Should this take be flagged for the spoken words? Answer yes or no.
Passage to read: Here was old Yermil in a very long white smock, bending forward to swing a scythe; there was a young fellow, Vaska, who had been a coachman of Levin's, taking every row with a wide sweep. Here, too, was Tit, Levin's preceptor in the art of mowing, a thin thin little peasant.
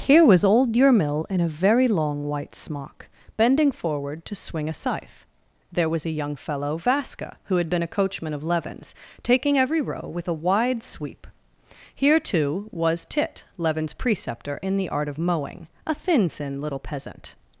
no